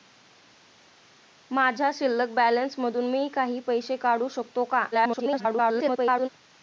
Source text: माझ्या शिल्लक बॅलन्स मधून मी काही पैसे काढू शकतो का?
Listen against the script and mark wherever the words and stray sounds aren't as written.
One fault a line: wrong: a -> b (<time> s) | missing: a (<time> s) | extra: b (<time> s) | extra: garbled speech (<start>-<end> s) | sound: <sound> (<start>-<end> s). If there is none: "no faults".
extra: garbled speech (4.9-6.3 s)